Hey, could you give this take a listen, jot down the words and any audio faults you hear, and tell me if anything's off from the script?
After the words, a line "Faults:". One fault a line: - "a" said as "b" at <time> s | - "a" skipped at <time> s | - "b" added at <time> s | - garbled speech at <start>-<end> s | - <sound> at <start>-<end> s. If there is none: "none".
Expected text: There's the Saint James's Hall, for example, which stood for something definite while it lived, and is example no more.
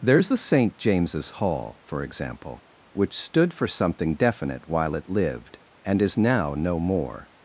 There's the Saint James's Hall, for example, which stood for something definite while it lived, and is now no more.
Faults:
- "example" said as "now" at 6.2 s